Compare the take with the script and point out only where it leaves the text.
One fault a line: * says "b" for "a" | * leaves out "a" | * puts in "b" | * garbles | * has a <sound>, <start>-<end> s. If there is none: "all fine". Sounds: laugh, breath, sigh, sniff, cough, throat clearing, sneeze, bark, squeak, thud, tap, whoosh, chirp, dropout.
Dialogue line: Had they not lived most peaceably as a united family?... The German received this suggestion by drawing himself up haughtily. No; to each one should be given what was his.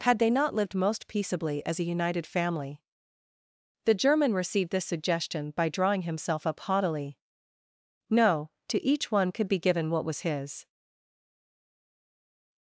* says "could" for "should"